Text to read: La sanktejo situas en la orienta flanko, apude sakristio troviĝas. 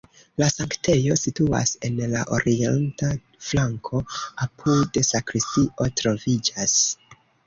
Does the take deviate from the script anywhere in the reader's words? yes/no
no